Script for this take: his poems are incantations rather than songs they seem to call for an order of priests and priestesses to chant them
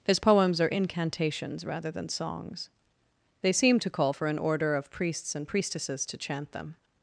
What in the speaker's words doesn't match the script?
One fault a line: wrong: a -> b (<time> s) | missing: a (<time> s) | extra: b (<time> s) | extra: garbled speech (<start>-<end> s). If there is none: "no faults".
no faults